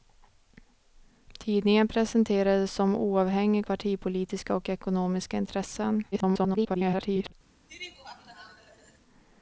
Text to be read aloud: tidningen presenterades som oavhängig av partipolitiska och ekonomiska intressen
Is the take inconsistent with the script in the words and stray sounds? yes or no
yes